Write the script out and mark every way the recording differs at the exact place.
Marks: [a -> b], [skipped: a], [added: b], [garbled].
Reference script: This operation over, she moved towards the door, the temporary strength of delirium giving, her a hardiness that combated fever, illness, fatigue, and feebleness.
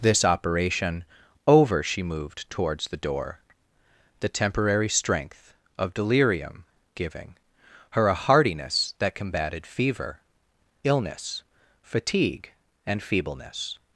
This operation over, she moved towards the door, the temporary strength of delirium giving, her a hardiness that combated fever, illness, fatigue, and feebleness.